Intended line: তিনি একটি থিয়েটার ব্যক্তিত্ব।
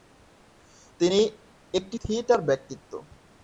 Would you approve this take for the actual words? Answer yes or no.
yes